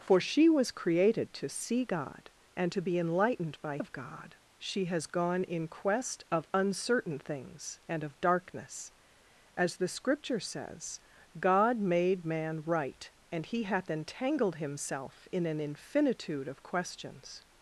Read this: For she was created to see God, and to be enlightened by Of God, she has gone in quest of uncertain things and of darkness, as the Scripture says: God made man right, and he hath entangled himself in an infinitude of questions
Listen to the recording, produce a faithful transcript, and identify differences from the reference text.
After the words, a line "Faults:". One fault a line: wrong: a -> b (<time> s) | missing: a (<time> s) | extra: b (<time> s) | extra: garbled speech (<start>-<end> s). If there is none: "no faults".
For she was created to see God, and to be enlightened by Of God, she has gone in quest of uncertain things and of darkness, as the Scripture says: God made man right, and he hath entangled himself in an infinitude of questions
Faults:
no faults